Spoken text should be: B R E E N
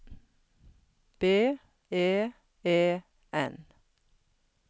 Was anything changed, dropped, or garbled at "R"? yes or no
yes